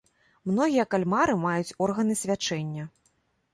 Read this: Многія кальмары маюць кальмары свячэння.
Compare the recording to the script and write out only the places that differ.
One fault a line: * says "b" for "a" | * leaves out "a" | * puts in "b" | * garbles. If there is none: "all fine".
* says "органы" for "кальмары"